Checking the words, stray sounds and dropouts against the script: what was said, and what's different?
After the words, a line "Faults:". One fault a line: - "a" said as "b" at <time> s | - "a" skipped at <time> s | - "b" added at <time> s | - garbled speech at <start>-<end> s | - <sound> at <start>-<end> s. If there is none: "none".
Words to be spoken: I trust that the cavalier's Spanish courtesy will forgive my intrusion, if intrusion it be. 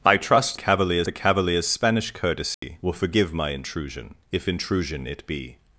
I trust cavalier's the cavalier's Spanish courtesy will forgive my intrusion, if intrusion it be.
Faults:
- "that" said as "cavalier's" at 0.6 s
- dropout at 2.5-2.6 s